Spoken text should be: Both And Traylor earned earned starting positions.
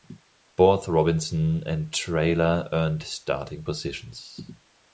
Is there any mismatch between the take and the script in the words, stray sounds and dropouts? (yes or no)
yes